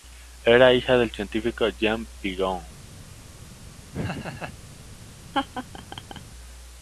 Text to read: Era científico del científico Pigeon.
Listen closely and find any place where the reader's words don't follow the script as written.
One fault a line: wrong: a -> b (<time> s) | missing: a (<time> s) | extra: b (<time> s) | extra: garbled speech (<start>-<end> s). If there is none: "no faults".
wrong: científico -> hija (0.7 s)
extra: Jean (1.7 s)